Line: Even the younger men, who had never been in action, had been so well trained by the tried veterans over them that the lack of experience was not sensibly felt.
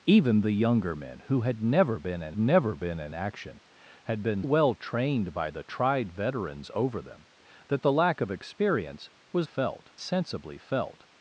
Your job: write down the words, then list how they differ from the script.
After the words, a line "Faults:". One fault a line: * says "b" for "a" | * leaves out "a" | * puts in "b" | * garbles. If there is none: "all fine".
Even the younger men, who had never been in never been in action, had been well trained by the tried veterans over them that the lack of experience was felt sensibly felt.
Faults:
* puts in "never been in"
* leaves out "so"
* says "felt" for "not"